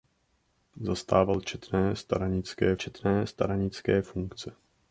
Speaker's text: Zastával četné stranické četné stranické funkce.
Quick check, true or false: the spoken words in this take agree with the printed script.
true